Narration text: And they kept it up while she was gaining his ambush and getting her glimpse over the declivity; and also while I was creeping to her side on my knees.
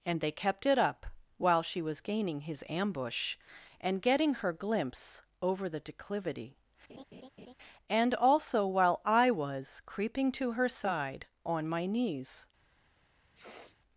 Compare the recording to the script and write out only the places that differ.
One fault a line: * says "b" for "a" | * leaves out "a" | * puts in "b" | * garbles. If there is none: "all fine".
all fine